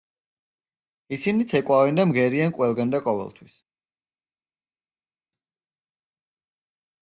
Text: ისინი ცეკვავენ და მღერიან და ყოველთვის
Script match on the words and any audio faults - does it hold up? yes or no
no